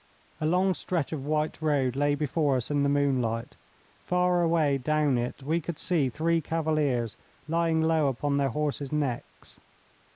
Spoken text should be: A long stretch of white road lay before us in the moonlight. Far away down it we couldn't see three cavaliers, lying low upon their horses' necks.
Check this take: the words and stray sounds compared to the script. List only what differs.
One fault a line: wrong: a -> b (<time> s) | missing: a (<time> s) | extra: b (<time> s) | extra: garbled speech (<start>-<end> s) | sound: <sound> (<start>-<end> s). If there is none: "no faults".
wrong: couldn't -> could (5.6 s)